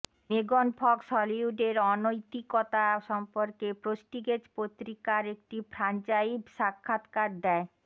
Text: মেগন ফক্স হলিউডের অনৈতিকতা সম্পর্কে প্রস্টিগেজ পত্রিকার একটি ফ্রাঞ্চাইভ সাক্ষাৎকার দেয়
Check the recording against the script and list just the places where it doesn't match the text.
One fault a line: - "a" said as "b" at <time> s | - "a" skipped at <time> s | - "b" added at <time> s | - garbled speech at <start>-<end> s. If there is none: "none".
none